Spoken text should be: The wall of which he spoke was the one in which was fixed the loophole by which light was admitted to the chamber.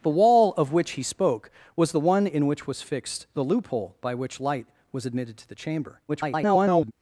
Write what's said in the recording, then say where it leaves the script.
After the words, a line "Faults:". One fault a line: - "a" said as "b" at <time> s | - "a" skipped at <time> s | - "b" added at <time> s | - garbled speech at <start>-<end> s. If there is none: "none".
The wall of which he spoke was the one in which was fixed the loophole by which light was admitted to the chamber. [garbled]
Faults:
- garbled speech at 6.1-6.9 s